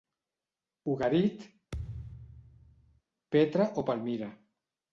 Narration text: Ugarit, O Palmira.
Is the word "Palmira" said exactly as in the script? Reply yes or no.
yes